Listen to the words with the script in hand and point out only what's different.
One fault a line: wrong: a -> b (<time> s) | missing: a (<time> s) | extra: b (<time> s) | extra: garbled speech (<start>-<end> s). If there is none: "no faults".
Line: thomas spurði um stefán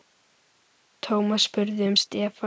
no faults